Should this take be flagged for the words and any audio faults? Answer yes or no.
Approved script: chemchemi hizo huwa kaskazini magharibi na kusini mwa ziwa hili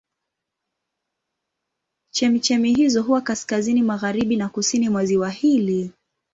no